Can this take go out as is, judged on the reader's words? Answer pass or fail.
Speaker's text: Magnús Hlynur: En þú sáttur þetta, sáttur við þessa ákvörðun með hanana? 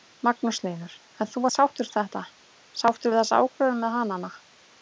pass